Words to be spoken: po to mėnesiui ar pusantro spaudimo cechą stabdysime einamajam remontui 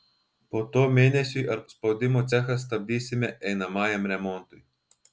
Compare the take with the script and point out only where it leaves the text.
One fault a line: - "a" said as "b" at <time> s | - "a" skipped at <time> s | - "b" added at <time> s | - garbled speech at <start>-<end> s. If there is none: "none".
- "pusantro" skipped at 1.6 s